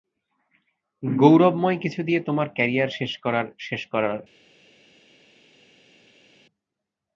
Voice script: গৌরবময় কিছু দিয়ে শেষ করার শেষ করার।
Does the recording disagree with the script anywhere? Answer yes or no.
yes